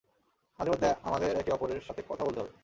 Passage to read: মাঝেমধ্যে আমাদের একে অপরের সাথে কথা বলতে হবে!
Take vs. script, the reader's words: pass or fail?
pass